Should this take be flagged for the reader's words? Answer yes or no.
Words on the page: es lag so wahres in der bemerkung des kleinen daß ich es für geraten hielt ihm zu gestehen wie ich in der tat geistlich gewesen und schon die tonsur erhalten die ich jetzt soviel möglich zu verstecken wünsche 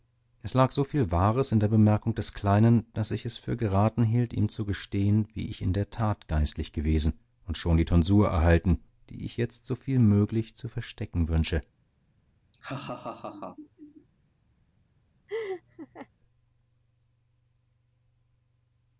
yes